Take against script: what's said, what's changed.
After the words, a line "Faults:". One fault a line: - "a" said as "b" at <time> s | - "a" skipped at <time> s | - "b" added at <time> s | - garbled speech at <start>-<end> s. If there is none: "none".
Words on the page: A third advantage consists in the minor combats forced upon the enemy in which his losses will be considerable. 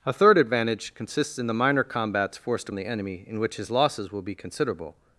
A third advantage consists in the minor combats forced the enemy in which his losses will be considerable.
Faults:
- "upon" skipped at 2.7 s